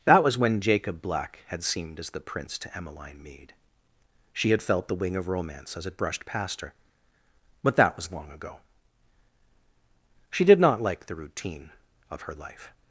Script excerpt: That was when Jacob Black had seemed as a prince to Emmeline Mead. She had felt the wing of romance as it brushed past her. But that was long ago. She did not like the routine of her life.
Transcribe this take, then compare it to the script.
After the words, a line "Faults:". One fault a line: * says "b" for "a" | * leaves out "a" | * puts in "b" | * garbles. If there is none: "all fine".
That was when Jacob Black had seemed as the prince to Emmeline Mead. She had felt the wing of romance as it brushed past her. But that was long ago. She did not like the routine of her life.
Faults:
* says "the" for "a"